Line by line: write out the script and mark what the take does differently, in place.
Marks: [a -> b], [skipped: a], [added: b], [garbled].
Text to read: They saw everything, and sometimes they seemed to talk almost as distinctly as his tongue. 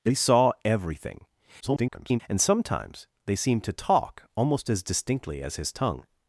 They saw everything, [garbled] and sometimes they seemed to talk almost as distinctly as his tongue.